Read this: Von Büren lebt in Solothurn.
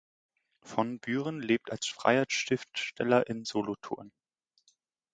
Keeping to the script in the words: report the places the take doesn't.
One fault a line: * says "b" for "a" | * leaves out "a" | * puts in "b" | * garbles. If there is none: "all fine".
* puts in "als freier Schriftsteller"